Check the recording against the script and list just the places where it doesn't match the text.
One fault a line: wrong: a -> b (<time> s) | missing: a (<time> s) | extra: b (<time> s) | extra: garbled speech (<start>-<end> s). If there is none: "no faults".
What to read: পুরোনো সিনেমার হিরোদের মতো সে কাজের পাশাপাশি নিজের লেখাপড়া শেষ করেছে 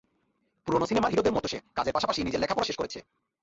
no faults